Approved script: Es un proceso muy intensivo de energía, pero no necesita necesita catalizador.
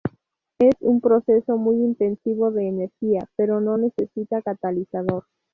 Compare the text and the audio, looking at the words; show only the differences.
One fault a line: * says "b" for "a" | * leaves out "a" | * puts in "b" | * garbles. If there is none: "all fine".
* leaves out "necesita"